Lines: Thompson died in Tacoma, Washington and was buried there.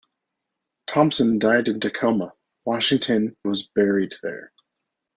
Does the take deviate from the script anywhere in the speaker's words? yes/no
yes